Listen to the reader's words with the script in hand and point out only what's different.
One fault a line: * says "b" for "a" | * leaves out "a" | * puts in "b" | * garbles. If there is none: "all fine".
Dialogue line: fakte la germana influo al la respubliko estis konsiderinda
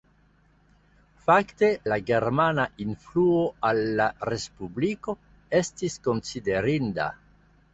all fine